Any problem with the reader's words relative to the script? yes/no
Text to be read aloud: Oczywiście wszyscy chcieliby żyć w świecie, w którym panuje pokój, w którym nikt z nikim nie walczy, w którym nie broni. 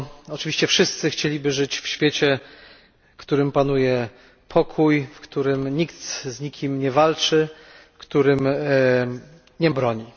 no